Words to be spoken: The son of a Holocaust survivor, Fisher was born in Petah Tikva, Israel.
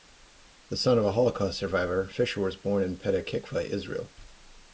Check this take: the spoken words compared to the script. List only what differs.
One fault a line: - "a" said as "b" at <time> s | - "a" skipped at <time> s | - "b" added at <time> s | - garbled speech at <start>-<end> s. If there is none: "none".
none